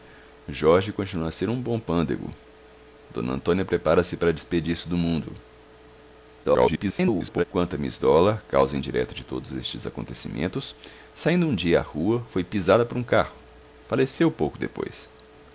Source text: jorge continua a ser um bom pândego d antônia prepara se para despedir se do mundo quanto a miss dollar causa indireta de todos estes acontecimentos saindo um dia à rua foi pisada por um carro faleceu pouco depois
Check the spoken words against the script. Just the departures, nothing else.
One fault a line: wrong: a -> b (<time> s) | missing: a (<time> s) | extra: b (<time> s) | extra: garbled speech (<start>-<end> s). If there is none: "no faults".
extra: garbled speech (6.4-7.4 s)